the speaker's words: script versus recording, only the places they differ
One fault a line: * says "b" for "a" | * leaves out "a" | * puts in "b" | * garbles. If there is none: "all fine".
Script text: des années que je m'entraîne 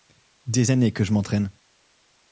all fine